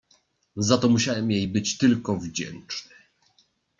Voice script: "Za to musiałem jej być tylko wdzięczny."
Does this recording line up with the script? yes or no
yes